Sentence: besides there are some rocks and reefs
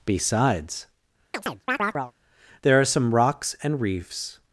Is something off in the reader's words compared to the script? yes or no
no